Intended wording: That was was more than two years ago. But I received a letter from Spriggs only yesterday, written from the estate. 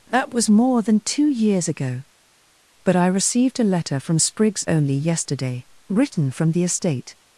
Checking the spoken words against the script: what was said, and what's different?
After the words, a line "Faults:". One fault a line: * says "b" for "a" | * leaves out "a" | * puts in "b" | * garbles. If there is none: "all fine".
That was more than two years ago. But I received a letter from Spriggs only yesterday, written from the estate.
Faults:
* leaves out "was"